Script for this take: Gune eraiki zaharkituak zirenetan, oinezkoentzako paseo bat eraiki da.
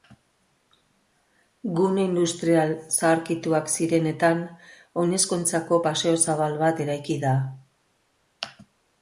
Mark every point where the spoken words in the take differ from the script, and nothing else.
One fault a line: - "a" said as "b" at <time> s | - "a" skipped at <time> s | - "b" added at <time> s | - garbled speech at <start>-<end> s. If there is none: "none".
- "eraiki" said as "industrial" at 2.1 s
- "zabal" added at 6.3 s